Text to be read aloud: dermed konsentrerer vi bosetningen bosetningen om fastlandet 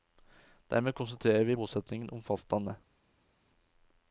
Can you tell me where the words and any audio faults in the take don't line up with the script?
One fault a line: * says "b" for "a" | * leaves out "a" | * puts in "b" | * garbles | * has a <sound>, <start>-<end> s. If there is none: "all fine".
* leaves out "bosetningen"